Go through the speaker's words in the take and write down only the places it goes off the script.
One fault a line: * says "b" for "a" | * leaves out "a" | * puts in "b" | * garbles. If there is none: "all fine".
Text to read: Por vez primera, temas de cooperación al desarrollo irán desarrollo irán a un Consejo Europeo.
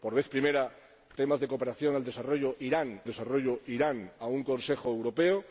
all fine